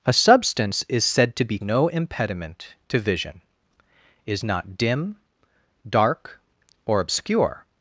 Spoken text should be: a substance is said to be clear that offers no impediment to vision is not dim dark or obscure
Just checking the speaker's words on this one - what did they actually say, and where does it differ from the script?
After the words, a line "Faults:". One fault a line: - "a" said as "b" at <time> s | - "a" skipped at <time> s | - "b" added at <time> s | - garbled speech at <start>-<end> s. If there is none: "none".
a substance is said to be no impediment to vision is not dim dark or obscure
Faults:
- "clear that offers" skipped at 1.6 s